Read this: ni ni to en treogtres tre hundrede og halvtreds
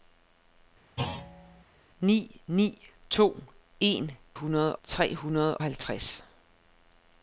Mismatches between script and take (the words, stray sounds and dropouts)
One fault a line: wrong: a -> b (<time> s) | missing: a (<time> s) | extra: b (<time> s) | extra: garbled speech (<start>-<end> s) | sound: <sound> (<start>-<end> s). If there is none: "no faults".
sound: thud (1.0-1.6 s)
wrong: treogtres -> hundrede (4.3 s)
missing: og (5.6 s)